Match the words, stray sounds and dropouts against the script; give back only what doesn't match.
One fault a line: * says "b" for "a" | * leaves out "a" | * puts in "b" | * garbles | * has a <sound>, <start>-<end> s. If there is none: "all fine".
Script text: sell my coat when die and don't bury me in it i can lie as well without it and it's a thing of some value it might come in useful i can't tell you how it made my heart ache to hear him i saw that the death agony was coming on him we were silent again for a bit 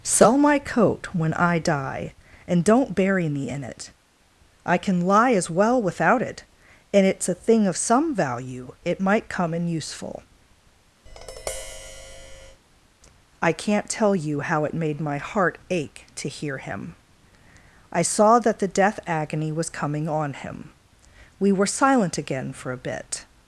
* puts in "i"
* has a tap, 11.1-12.6 s